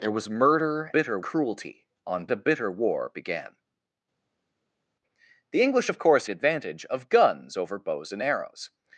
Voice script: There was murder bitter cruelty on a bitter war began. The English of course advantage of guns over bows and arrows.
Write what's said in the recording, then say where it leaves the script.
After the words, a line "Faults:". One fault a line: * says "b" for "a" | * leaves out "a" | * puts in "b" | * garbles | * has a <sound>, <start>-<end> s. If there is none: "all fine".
There was murder bitter cruelty on a bitter war began. The English of course advantage of guns over bows and arrows.
Faults:
all fine